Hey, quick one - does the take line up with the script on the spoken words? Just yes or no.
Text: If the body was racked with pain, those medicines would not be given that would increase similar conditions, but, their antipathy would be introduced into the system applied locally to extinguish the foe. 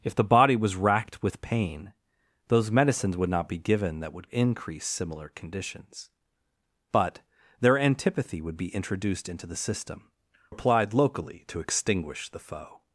yes